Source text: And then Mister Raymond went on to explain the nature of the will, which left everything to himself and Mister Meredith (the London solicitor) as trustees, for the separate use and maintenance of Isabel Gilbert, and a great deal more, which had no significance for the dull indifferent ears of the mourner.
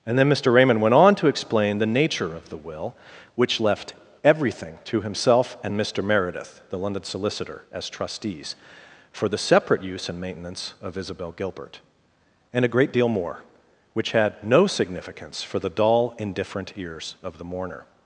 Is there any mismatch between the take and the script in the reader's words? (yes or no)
no